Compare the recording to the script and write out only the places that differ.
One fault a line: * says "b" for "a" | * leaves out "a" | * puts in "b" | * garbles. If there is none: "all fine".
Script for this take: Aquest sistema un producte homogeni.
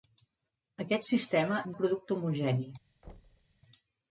all fine